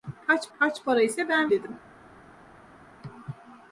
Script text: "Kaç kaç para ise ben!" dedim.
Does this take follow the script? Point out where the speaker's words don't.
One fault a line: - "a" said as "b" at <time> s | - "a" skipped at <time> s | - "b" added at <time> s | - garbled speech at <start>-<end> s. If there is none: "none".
none